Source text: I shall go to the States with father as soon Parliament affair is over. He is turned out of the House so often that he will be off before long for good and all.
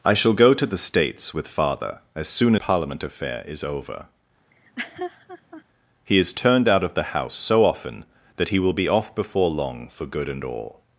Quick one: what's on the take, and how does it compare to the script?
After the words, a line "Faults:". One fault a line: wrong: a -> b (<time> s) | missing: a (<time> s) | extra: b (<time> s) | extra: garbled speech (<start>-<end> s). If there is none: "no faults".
I shall go to the States with father as soon Parliament affair is over. He is turned out of the House so often that he will be off before long for good and all.
Faults:
no faults